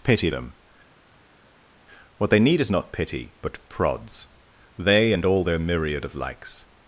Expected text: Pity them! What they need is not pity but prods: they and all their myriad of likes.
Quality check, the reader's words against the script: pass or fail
pass